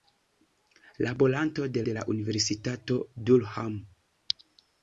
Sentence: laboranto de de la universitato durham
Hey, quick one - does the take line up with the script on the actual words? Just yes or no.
yes